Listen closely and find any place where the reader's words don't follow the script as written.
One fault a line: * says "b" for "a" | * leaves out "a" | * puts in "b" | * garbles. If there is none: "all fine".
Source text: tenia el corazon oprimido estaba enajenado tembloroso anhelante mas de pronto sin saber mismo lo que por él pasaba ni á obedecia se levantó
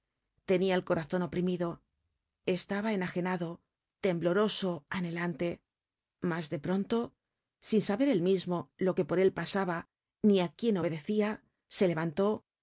* puts in "él"
* puts in "quién"